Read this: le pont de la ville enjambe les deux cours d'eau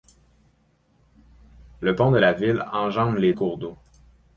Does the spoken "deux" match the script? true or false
false